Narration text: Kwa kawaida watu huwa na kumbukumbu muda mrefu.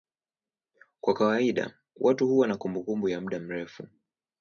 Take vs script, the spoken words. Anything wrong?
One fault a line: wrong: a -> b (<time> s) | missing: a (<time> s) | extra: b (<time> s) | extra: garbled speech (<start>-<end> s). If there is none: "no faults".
extra: ya (3.1 s)